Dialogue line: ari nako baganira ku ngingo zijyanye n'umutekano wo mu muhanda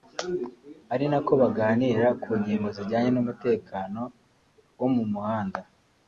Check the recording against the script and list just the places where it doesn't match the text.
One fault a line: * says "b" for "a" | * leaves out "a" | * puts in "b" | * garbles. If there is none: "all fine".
all fine